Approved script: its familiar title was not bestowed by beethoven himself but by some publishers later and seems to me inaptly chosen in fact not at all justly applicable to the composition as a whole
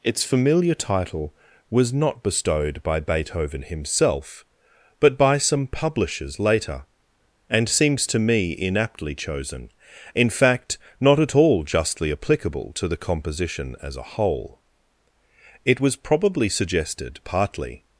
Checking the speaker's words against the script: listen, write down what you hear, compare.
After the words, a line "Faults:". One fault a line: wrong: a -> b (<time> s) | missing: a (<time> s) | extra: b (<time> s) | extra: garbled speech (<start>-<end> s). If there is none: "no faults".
its familiar title was not bestowed by beethoven himself but by some publishers later and seems to me inaptly chosen in fact not at all justly applicable to the composition as a whole it was probably suggested partly
Faults:
extra: it was probably suggested partly (15.6 s)